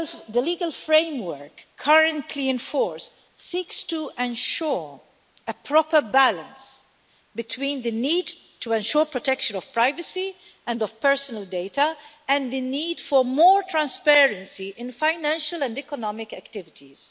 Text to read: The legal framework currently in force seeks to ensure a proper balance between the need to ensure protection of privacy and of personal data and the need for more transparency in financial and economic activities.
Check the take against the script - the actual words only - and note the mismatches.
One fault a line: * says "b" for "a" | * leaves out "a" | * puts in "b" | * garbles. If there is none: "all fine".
all fine